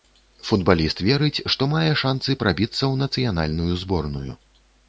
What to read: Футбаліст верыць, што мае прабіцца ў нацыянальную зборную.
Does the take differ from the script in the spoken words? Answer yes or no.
yes